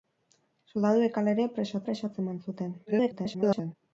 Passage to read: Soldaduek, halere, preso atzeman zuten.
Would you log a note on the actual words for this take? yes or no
yes